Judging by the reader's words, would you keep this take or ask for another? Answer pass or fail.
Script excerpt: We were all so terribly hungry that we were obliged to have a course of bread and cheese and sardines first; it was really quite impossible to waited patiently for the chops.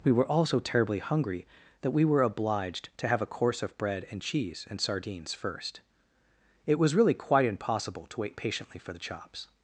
fail